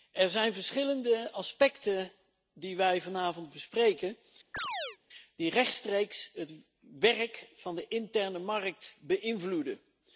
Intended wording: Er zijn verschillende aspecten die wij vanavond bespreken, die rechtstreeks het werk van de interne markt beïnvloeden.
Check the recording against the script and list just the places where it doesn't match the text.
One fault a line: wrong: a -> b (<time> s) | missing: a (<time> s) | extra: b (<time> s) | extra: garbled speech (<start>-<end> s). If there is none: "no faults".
no faults